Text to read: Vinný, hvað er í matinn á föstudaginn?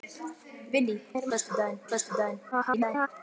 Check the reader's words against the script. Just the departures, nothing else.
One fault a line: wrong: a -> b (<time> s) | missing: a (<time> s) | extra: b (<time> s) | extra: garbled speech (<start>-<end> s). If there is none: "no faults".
missing: hvað (0.9 s)
wrong: matinn -> föstudaginn (1.3 s)
extra: garbled speech (2.5-3.1 s)